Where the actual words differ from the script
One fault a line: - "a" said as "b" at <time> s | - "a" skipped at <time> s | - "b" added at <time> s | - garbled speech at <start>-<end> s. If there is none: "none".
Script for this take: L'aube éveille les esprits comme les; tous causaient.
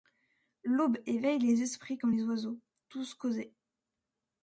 - "oiseaux" added at 2.2 s